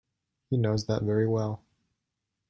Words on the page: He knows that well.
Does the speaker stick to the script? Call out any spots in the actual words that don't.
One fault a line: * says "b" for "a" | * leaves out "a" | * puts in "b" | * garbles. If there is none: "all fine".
* puts in "very"